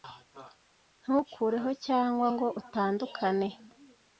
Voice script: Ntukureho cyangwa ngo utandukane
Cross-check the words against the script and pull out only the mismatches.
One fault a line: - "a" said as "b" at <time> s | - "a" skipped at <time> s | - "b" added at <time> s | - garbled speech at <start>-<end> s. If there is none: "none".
none